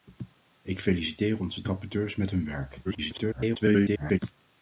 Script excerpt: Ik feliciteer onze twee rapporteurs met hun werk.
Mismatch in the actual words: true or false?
true